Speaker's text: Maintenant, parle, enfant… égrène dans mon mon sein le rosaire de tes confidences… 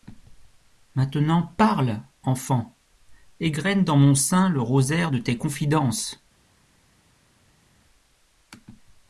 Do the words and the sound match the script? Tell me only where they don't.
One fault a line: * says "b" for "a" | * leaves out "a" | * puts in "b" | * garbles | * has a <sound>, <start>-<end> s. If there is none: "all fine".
* leaves out "mon"